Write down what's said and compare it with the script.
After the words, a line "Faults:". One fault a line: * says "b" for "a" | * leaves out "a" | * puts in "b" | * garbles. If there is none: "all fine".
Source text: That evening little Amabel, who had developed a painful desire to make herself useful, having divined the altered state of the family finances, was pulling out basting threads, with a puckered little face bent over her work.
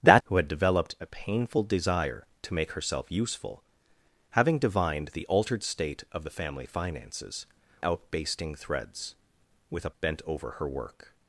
That who had developed a painful desire to make herself useful, having divined the altered state of the family finances, out basting threads, with a bent over her work.
Faults:
* leaves out "evening little Amabel"
* leaves out "was pulling"
* leaves out "puckered little face"